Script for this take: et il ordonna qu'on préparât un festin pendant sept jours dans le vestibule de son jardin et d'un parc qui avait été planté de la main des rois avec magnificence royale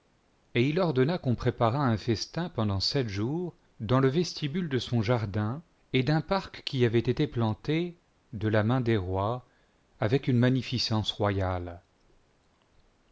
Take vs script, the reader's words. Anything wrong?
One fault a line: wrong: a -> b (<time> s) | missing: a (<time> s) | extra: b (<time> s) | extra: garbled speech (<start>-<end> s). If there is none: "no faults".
extra: une (10.3 s)